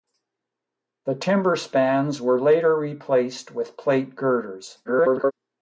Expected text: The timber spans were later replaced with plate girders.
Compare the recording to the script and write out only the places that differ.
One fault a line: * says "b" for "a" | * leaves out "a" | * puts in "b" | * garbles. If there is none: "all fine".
* garbles